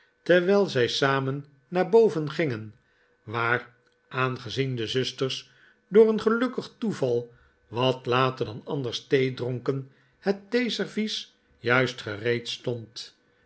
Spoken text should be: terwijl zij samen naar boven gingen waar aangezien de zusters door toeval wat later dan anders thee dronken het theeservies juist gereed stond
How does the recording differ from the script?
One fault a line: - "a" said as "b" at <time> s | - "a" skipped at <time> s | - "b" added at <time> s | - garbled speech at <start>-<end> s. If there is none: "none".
- "een gelukkig" added at 6.1 s